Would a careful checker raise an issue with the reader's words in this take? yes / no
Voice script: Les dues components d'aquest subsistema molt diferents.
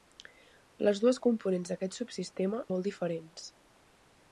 no